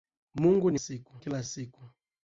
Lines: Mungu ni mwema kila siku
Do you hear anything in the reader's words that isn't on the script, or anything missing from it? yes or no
yes